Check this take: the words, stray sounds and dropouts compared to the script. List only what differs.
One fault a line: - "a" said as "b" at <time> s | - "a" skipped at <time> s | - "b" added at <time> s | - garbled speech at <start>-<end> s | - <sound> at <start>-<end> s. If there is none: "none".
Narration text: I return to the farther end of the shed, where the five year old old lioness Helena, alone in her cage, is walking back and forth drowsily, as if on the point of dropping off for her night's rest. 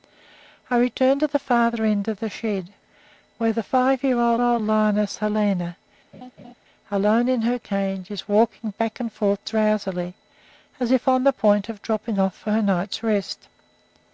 - laugh at 6.1-6.5 s